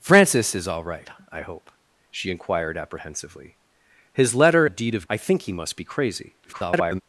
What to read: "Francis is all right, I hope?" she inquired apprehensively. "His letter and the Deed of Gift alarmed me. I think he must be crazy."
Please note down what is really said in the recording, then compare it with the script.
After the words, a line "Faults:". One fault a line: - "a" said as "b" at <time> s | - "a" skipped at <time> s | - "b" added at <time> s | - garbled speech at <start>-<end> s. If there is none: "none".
"Francis is all right, I hope?" she inquired apprehensively. "His letter the Deed of. I think he must be crazy." [garbled]
Faults:
- "and" skipped at 4.7 s
- "Gift alarmed me" skipped at 5.1 s
- garbled speech at 6.4-7.0 s